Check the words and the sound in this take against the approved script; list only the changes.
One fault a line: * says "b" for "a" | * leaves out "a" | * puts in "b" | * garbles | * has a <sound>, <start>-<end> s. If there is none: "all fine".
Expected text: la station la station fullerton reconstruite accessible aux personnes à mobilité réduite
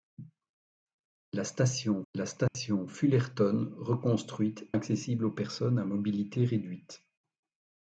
* has a dropout, 2.5-2.5 s